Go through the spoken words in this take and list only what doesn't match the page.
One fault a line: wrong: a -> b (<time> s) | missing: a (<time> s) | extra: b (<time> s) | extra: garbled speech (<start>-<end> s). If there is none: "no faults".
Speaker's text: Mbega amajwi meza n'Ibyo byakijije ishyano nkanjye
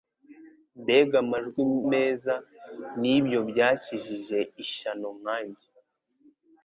no faults